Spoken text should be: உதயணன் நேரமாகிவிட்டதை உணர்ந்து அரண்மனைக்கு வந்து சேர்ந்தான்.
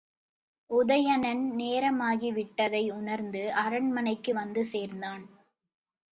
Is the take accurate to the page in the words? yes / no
yes